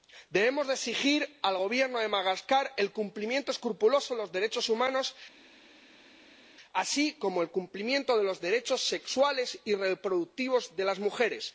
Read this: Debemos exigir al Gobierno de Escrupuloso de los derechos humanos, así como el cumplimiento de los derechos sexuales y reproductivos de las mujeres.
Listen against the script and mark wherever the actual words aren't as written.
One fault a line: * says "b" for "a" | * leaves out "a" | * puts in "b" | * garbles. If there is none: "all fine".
* puts in "Madagascar el cumplimiento"